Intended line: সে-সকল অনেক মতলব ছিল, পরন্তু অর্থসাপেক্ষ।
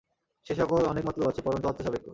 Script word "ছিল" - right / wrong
wrong